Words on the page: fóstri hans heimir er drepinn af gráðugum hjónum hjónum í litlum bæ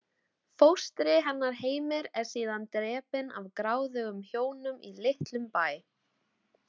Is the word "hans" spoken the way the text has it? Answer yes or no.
no